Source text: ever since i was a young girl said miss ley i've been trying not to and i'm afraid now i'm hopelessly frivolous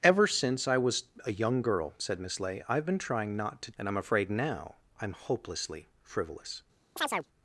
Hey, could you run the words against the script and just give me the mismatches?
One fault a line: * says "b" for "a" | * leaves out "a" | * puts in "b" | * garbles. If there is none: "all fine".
all fine